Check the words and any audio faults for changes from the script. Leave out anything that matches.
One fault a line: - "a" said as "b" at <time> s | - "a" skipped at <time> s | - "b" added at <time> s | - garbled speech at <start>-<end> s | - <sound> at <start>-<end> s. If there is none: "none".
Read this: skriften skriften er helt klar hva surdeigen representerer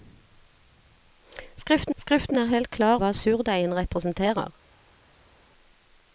none